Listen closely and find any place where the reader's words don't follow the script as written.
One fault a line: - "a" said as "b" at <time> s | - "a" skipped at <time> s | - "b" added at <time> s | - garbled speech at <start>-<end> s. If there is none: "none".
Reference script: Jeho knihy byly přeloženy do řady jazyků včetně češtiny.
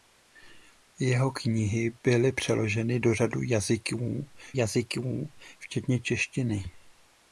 - "jazyků" added at 4.6 s